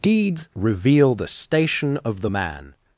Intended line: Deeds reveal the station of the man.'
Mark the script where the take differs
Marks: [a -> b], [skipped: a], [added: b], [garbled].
Deeds reveal the station of the man.'